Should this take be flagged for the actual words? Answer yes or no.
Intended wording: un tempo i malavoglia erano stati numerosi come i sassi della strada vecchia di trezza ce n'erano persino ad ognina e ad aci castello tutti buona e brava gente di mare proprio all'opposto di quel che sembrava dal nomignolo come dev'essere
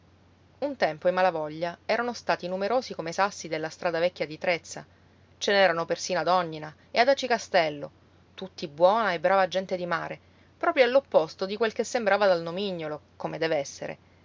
no